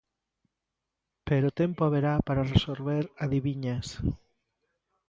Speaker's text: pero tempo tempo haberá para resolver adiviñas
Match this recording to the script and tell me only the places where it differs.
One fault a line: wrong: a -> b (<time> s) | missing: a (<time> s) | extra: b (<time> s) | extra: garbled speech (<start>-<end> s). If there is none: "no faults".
missing: tempo (1.9 s)